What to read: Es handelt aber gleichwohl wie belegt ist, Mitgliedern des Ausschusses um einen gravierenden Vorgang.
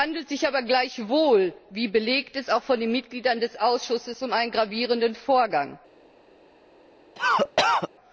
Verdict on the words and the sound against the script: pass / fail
fail